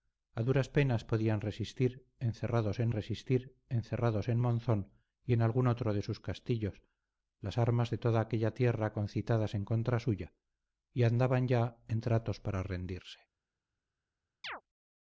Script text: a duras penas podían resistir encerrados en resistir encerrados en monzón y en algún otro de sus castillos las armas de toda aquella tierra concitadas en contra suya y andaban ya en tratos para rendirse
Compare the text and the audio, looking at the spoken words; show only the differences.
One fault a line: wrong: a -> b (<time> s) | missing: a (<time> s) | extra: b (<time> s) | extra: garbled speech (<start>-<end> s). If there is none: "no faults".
no faults